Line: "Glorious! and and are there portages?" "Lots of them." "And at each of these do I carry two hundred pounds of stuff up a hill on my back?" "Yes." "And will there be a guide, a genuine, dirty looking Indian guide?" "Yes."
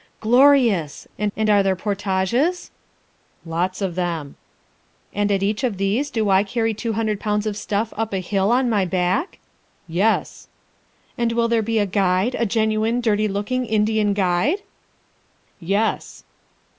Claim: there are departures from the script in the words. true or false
false